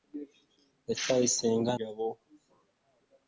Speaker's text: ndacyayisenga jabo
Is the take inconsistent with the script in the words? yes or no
no